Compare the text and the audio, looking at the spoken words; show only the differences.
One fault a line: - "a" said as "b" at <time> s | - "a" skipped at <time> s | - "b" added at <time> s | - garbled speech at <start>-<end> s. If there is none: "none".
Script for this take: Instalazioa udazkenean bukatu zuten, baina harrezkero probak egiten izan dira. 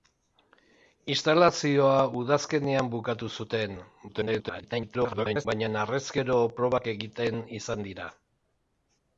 - garbled speech at 4.1-5.5 s